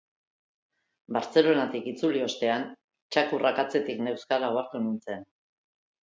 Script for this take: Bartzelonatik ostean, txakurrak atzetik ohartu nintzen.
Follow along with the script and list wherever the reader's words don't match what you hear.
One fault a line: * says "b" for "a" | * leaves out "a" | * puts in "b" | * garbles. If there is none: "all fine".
* puts in "itzuli"
* puts in "neuzkala"